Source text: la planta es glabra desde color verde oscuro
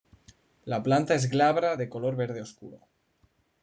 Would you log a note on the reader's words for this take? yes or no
yes